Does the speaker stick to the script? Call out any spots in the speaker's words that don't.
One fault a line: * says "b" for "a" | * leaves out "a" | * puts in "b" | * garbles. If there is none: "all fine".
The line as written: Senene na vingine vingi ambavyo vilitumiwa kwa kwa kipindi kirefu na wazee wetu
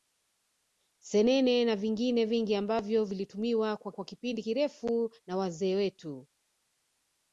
all fine